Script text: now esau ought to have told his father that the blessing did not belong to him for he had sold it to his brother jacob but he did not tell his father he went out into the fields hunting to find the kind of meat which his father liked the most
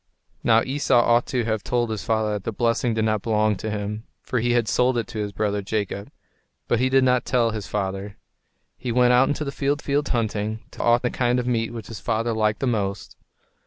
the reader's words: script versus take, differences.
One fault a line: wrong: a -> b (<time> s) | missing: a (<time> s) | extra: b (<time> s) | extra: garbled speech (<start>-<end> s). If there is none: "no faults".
extra: fields (9.8 s)
wrong: find -> ought (10.8 s)